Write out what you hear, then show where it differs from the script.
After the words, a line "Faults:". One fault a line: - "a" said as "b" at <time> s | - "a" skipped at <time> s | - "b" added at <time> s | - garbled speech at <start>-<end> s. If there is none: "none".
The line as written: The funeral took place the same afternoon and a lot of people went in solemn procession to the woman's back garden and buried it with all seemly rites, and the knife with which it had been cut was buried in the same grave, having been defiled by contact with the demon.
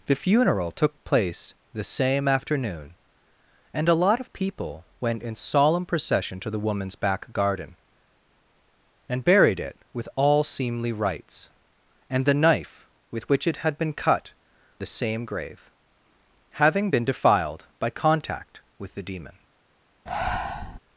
The funeral took place the same afternoon and a lot of people went in solemn procession to the woman's back garden and buried it with all seemly rites, and the knife with which it had been cut the same grave, having been defiled by contact with the demon.
Faults:
- "was buried in" skipped at 14.3 s